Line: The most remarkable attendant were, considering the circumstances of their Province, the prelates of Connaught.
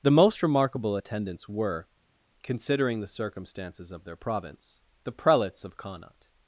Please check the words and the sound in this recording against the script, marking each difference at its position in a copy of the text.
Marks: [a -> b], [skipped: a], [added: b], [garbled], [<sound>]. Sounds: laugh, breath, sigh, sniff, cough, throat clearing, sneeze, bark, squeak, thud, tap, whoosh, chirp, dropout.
The most remarkable [attendant -> attendants] were, considering the circumstances of their Province, the prelates of Connaught.